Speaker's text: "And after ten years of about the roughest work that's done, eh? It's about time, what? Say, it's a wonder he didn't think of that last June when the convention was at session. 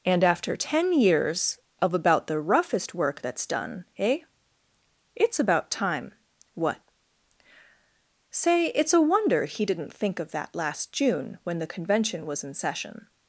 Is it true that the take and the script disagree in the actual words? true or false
true